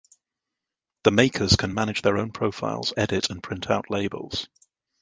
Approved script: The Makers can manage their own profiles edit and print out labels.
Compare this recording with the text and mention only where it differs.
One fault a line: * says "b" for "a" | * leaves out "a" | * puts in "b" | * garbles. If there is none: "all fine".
all fine